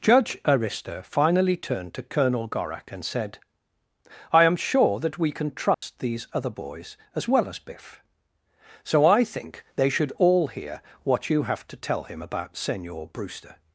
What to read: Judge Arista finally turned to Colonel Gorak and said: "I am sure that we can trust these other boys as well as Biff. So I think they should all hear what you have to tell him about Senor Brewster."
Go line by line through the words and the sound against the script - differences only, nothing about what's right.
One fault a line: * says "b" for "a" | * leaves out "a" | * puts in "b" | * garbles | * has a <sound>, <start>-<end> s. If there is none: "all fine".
* has a dropout, 5.7-5.8 s